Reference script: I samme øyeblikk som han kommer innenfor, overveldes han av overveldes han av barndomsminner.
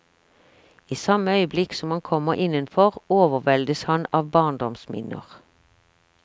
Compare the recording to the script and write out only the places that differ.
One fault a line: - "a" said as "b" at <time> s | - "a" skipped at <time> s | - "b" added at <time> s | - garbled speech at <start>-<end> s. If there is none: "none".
- "overveldes han av" skipped at 4.3 s